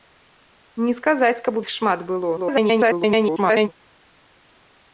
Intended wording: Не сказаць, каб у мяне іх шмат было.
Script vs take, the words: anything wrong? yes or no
yes